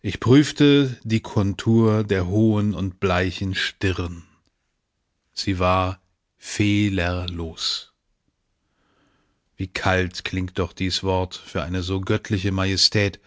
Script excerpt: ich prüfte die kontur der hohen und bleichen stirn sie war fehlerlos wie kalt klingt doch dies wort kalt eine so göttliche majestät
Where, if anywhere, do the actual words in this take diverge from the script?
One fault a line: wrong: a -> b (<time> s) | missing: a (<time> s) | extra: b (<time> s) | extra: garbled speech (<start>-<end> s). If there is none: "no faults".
wrong: kalt -> für (11.5 s)